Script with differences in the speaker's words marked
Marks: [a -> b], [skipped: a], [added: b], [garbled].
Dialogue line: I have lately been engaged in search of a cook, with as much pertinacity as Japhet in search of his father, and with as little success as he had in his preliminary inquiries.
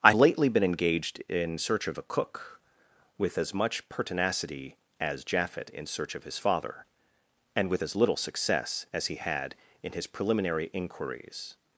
I [skipped: have] lately been engaged in search of a cook, with as much pertinacity as Japhet in search of his father, and with as little success as he had in his preliminary inquiries.